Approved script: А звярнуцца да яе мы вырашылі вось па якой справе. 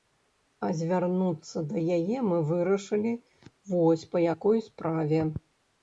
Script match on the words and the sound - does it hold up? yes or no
yes